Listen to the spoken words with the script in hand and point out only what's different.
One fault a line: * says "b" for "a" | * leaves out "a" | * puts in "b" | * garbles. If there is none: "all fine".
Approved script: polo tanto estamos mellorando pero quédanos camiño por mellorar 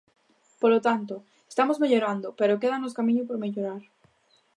all fine